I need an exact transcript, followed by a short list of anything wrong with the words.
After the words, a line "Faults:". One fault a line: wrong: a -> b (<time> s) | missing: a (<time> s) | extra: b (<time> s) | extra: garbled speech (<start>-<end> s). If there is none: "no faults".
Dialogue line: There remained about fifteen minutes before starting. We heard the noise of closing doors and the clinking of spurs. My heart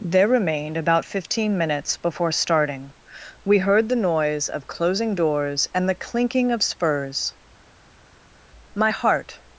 There remained about fifteen minutes before starting. We heard the noise of closing doors and the clinking of spurs. My heart
Faults:
no faults